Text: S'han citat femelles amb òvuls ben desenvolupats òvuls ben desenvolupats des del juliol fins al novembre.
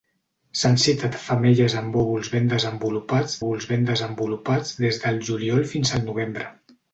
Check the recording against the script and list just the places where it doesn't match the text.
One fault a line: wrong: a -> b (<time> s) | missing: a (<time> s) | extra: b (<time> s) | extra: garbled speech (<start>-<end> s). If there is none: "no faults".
no faults